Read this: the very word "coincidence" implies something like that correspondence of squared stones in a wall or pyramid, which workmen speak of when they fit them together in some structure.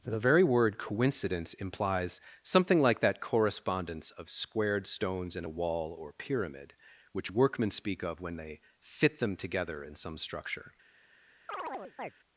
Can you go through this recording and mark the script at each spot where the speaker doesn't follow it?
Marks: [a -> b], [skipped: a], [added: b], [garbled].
the very word "coincidence" implies something like that correspondence of squared stones in a wall or pyramid, which workmen speak of when they fit them together in some structure.